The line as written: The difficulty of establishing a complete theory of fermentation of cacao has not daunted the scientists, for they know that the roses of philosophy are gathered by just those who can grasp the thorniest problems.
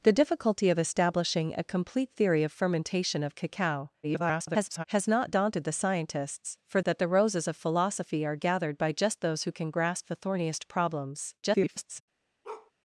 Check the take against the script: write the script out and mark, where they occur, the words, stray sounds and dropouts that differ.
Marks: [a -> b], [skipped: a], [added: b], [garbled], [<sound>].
The difficulty of establishing a complete theory of fermentation of cacao [garbled] has not daunted the scientists, for [skipped: they know] that the roses of philosophy are gathered by just those who can grasp the thorniest problems. [garbled] [bark]